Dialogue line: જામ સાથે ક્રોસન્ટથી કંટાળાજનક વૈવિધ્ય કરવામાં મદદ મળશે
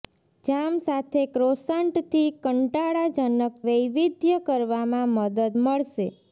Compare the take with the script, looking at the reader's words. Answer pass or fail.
pass